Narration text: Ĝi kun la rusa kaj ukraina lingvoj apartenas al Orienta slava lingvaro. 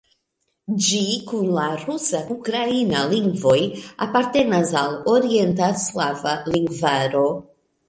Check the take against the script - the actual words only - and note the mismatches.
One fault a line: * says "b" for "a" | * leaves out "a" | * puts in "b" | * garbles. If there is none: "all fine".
* leaves out "kaj"